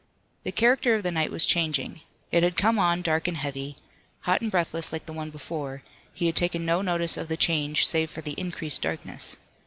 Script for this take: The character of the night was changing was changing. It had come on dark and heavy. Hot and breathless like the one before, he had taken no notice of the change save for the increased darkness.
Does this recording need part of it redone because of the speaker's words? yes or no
yes